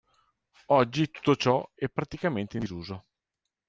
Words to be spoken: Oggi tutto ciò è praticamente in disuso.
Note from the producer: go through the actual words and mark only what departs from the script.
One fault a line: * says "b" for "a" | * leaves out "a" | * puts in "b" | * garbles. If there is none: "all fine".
all fine